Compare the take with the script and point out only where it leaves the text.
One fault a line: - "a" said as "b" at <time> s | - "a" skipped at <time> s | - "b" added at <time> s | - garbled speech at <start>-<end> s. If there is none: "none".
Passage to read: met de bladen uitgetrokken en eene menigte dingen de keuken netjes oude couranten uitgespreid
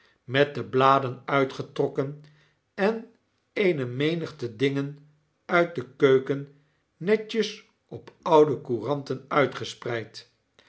- "uit" added at 5.5 s
- "op" added at 7.9 s